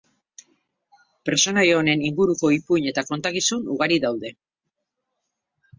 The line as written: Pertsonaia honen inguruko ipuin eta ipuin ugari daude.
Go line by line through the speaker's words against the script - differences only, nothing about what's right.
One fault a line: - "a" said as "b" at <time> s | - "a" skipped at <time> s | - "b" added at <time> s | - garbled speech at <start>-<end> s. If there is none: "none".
- "ipuin" said as "kontakizun" at 3.1 s